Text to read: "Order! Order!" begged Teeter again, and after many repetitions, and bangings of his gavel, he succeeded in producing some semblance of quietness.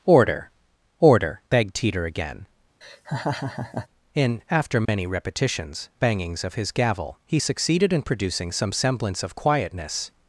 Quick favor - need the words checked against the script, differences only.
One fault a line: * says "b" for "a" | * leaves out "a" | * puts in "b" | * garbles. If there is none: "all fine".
* says "in" for "and"
* leaves out "and"